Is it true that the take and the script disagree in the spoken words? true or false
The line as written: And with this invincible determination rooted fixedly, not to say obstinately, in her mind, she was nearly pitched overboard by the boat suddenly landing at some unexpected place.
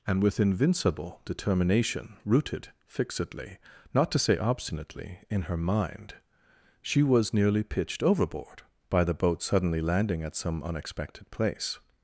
true